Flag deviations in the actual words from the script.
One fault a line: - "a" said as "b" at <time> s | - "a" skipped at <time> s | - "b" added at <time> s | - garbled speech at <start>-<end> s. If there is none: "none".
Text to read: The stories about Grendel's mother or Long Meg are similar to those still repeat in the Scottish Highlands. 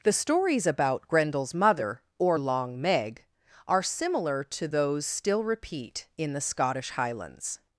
none